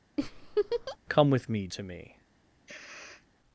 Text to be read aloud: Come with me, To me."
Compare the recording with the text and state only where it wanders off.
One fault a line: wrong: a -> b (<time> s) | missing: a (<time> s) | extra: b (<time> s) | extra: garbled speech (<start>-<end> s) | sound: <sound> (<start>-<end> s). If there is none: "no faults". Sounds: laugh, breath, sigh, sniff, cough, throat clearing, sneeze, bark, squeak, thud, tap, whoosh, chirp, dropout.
sound: laugh (0.2-1.0 s)
sound: sniff (2.7-3.3 s)